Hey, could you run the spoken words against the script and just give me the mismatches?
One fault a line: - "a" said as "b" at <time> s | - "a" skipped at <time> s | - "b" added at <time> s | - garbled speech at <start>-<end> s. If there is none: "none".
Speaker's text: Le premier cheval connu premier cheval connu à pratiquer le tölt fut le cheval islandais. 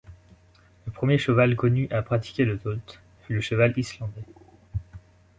- "premier cheval connu" skipped at 1.9 s